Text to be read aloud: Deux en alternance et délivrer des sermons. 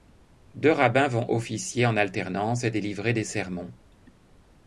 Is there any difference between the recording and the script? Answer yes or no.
yes